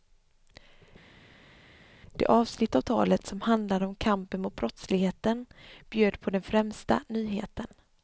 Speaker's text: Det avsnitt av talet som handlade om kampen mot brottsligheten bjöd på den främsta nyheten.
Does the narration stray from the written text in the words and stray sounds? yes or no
no